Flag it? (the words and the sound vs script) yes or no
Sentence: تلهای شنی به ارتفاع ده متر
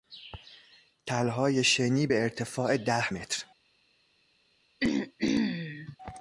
yes